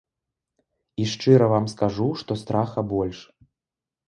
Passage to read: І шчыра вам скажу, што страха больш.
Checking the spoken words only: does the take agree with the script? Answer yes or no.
yes